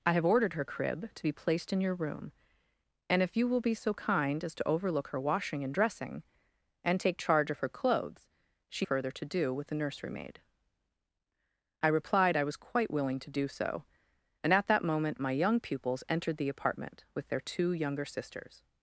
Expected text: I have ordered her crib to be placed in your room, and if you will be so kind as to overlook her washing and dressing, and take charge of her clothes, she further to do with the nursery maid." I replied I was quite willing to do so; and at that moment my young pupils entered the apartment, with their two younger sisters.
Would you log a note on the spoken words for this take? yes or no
no